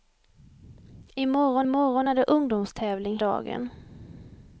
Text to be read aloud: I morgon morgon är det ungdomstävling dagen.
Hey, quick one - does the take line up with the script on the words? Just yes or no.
yes